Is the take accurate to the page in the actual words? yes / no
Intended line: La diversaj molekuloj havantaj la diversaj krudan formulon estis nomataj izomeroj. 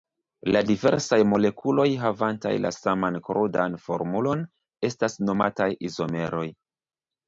no